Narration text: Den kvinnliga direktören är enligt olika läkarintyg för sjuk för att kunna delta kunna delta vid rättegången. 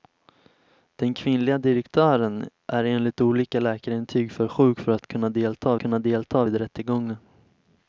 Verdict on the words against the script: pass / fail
pass